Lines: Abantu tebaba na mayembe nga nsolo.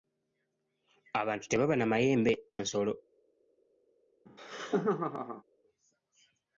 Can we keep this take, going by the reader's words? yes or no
no